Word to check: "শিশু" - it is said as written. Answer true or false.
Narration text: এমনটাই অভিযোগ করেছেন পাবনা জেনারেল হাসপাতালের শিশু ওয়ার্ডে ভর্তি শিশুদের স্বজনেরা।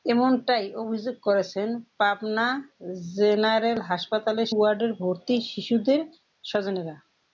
false